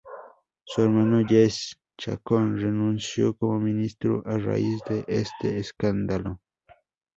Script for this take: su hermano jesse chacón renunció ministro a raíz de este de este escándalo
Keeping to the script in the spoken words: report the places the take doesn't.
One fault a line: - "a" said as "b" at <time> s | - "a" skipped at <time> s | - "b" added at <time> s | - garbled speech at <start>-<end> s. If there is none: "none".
- "como" added at 3.3 s
- "de este" skipped at 5.6 s